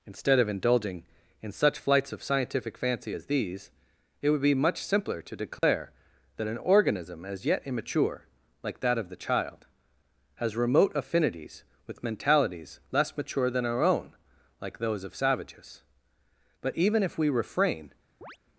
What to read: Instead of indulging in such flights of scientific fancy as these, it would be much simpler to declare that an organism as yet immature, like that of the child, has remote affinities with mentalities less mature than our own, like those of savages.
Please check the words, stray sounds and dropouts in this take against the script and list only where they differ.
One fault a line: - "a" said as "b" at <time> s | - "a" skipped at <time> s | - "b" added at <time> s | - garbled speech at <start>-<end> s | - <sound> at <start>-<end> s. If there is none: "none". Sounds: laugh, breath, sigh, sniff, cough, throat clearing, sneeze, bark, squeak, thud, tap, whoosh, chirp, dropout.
- dropout at 5.6-5.6 s
- "But even if we refrain" added at 16.6 s
- chirp at 18.2-18.4 s